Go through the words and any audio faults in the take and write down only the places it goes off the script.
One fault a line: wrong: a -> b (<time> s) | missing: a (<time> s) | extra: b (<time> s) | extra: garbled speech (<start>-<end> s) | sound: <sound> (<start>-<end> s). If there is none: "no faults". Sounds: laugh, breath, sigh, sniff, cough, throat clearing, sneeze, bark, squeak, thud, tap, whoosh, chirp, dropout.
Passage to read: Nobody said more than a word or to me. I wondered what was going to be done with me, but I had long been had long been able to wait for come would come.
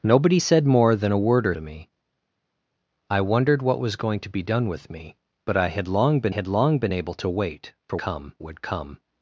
no faults